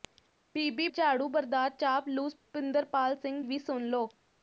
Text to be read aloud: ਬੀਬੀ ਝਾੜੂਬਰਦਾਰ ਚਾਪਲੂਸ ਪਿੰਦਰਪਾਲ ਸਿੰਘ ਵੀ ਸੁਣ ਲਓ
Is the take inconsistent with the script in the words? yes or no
no